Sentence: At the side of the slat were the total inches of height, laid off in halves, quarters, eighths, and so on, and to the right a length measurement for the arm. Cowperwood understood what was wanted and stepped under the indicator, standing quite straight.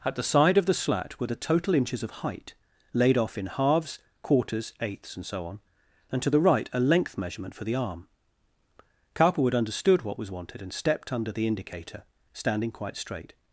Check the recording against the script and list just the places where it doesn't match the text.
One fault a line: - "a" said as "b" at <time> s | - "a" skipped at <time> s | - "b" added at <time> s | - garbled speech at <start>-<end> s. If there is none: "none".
none